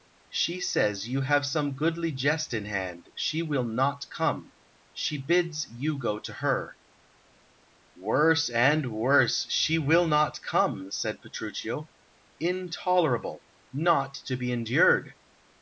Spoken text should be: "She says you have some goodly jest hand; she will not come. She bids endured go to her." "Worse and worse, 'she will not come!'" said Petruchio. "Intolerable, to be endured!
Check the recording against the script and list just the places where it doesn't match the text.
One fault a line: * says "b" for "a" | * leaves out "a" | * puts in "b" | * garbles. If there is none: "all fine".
* puts in "in"
* says "you" for "endured"
* puts in "not"